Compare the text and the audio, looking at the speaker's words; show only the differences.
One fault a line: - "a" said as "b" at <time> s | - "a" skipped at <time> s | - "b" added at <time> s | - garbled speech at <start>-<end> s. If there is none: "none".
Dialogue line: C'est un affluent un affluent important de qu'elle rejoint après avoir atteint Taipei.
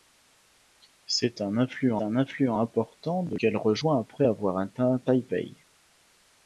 none